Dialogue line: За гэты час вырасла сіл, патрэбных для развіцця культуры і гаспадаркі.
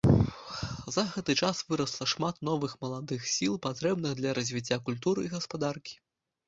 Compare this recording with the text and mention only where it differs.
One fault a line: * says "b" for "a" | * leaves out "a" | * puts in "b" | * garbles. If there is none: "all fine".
* puts in "шмат новых маладых"